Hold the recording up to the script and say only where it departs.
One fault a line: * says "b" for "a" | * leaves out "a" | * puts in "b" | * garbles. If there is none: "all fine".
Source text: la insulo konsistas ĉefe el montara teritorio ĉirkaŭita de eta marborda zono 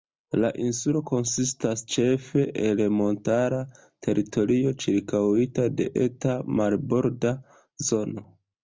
all fine